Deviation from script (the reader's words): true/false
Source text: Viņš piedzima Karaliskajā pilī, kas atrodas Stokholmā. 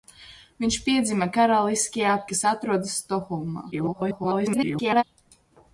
true